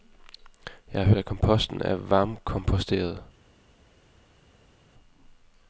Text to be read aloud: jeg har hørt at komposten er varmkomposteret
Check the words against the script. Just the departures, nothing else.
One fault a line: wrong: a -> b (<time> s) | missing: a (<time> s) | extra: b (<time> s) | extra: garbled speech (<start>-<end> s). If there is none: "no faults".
missing: hørt (1.1 s)